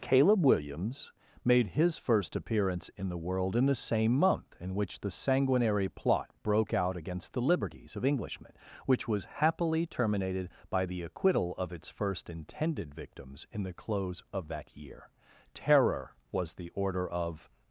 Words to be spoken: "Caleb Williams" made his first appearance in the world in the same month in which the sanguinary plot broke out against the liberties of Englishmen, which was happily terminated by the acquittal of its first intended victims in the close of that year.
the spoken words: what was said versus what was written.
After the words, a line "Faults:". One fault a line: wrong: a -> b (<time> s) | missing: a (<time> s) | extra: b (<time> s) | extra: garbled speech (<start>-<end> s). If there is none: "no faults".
"Caleb Williams" made his first appearance in the world in the same month in which the sanguinary plot broke out against the liberties of Englishmen, which was happily terminated by the acquittal of its first intended victims in the close of that year. Terror was the order of
Faults:
extra: Terror was the order of (15.5 s)